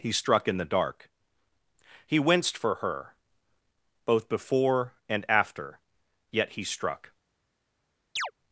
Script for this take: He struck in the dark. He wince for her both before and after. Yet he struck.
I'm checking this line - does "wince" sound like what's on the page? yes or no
no